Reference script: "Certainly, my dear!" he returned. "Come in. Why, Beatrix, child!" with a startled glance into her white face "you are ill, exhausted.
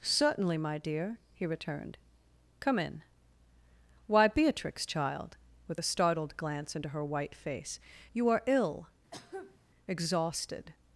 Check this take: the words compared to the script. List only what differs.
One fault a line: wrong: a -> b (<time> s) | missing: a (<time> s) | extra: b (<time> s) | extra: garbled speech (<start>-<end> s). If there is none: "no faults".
no faults